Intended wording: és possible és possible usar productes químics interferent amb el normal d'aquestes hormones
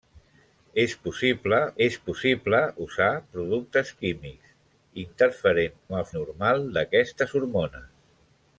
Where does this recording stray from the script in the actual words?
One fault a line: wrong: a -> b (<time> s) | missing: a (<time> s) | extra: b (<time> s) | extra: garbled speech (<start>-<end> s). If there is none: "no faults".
no faults